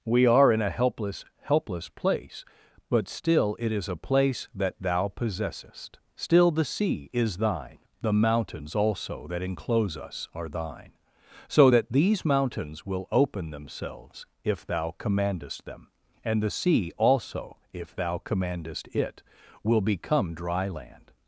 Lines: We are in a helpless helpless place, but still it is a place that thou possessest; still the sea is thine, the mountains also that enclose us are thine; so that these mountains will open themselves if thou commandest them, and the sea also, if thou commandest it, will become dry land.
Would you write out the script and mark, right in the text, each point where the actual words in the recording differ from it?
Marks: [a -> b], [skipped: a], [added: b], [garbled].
We are in a helpless helpless place, but still it is a place that thou possessest; still the sea is thine, the mountains also that enclose us are thine; so that these mountains will open themselves if thou commandest them, and the sea also, if thou commandest it, will become dry land.